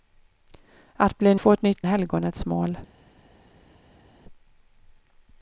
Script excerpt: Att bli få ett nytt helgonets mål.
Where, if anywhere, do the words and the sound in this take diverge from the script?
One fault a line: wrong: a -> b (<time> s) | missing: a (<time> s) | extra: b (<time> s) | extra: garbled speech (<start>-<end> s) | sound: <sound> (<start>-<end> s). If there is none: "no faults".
no faults